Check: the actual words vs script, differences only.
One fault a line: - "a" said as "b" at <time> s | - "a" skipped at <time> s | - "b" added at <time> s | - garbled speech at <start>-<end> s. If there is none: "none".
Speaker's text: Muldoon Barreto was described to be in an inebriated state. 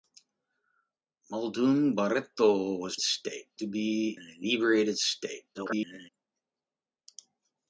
- "described" said as "state" at 3.0 s
- "in" skipped at 4.2 s
- garbled speech at 5.5-6.1 s